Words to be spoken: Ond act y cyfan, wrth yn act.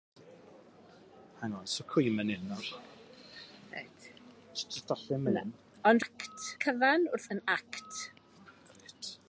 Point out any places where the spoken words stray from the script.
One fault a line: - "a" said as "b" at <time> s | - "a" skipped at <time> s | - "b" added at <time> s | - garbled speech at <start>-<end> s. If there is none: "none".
none